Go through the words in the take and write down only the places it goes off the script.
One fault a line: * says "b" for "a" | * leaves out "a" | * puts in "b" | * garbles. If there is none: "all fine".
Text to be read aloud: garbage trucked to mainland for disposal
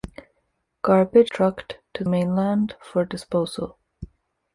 all fine